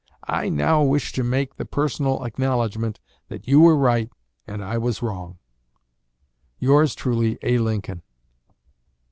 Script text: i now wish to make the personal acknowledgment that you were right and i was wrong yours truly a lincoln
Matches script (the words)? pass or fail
pass